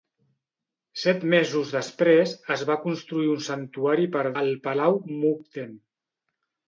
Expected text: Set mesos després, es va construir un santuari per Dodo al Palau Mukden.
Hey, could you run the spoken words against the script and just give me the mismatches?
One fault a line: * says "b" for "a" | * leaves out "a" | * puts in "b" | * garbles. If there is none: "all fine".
* leaves out "Dodo"